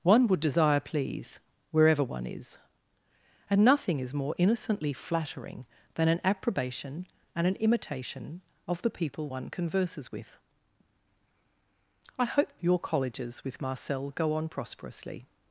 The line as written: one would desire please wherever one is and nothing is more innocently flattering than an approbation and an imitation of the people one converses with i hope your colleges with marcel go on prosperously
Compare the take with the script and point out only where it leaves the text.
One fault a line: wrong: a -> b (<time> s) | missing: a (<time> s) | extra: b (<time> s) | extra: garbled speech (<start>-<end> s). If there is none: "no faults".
no faults